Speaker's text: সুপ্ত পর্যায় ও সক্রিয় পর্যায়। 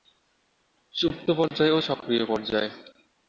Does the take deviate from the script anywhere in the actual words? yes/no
no